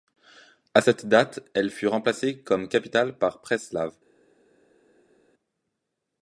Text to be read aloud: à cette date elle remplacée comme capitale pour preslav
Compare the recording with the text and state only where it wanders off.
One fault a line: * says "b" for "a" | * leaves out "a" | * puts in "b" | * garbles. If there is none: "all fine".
* puts in "fut"
* says "par" for "pour"